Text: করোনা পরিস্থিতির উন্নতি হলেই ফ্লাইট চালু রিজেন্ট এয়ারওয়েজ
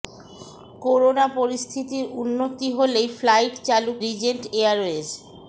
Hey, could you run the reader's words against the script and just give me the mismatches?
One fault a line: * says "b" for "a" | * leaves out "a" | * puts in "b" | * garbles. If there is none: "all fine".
all fine